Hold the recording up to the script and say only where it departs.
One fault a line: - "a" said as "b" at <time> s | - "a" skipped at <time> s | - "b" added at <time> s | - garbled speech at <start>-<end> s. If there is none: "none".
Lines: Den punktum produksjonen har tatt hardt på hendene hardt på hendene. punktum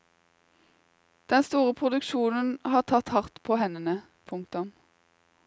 - "punktum" said as "store" at 1.4 s
- "hardt på hendene" skipped at 4.0 s